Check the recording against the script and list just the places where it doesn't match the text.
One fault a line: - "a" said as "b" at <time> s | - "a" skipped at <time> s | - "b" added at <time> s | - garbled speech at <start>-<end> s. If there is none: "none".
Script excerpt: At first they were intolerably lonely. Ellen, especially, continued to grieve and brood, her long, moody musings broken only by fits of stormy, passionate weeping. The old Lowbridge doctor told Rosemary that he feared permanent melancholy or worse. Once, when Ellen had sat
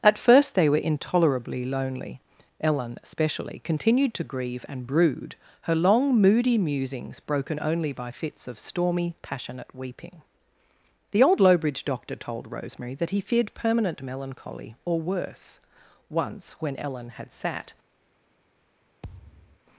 none